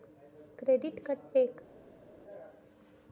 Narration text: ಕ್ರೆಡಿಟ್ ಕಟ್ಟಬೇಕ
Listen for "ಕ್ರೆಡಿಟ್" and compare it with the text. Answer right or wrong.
right